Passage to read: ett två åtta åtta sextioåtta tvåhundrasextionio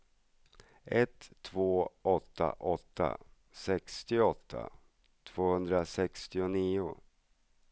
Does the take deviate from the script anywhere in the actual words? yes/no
no